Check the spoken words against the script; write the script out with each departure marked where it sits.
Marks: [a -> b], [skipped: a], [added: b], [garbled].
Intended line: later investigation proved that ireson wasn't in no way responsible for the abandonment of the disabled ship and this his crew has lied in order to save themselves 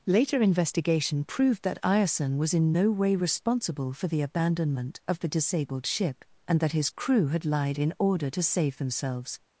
later investigation proved that ireson [wasn't -> was] in no way responsible for the abandonment of the disabled ship and [this -> that] his crew [has -> had] lied in order to save themselves